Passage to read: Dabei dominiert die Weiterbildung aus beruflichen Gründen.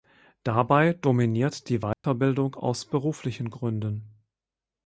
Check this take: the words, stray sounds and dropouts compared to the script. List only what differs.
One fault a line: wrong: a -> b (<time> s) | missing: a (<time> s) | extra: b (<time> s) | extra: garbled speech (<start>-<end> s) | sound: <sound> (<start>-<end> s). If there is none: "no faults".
sound: dropout (1.9-2.0 s)